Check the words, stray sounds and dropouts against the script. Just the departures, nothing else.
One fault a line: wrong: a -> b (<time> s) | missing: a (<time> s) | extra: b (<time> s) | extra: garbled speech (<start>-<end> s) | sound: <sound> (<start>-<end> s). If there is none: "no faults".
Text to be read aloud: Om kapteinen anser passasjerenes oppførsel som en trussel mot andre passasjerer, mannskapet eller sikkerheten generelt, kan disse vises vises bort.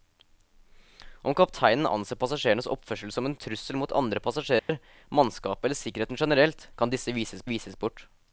sound: dropout (4.6-4.7 s)